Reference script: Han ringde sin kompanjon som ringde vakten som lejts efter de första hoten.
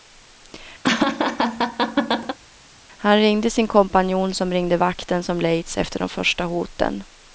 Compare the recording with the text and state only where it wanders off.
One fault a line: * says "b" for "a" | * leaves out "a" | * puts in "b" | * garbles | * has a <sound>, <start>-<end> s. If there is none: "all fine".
* has a laugh, 0.8-2.4 s